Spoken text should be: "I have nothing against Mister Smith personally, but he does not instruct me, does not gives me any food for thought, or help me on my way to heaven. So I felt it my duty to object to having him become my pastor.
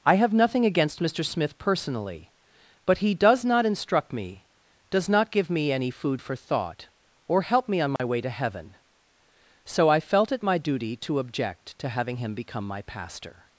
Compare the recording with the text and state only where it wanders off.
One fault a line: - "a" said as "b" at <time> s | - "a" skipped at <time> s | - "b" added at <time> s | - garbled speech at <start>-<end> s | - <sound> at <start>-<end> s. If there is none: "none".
- "gives" said as "give" at 5.3 s
- dropout at 8.0-8.0 s